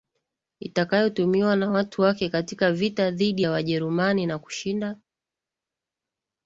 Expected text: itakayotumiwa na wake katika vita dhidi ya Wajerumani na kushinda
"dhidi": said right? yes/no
yes